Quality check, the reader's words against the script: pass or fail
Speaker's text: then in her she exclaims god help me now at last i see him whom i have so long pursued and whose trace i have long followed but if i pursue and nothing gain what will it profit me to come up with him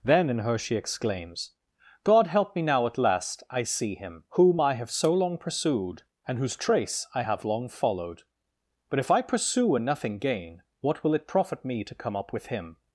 pass